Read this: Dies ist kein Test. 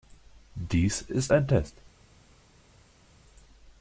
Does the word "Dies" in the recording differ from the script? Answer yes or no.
no